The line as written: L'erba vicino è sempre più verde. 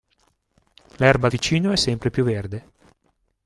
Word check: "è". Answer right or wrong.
right